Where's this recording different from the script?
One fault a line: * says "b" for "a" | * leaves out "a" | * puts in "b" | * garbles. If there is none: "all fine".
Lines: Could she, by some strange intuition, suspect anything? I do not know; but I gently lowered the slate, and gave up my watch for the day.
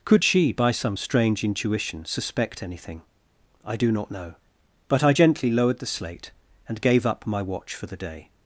all fine